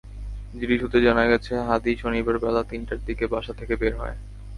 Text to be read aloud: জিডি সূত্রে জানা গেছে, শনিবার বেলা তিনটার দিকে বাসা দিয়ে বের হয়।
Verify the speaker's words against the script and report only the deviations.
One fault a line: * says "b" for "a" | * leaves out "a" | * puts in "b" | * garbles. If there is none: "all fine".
* puts in "হাদী"
* says "থেকে" for "দিয়ে"